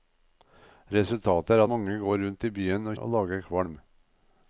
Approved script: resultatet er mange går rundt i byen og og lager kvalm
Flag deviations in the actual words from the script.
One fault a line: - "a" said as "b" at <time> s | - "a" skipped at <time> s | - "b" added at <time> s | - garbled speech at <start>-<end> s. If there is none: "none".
none